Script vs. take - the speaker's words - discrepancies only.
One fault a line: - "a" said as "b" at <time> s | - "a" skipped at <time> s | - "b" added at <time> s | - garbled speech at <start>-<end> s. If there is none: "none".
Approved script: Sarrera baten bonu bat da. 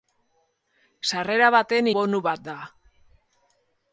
none